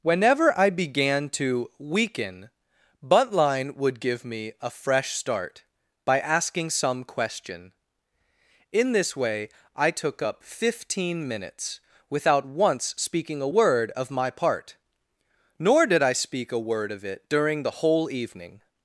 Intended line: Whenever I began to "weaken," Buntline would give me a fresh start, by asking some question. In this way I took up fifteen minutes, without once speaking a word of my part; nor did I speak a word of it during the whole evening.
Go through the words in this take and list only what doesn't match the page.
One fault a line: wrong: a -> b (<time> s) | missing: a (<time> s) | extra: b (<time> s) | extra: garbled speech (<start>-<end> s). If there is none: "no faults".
no faults